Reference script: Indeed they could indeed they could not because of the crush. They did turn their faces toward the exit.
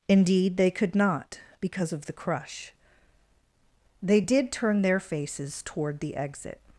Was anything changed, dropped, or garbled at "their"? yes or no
no